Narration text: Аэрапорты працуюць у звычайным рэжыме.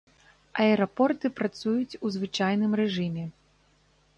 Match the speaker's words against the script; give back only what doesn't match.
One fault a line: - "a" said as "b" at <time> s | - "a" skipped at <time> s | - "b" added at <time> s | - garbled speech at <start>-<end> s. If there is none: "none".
none